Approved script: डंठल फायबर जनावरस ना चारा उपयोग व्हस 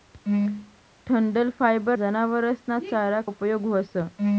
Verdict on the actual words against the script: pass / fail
pass